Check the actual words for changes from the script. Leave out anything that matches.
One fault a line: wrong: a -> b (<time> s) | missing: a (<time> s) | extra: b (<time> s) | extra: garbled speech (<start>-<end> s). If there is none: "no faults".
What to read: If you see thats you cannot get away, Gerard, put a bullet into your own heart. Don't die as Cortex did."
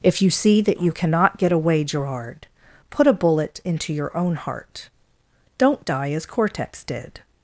wrong: thats -> that (0.6 s)